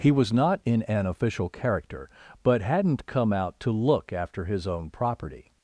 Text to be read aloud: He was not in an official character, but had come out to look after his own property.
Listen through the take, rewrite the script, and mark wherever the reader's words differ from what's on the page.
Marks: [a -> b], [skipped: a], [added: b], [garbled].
He was not in an official character, but [had -> hadn't] come out to look after his own property.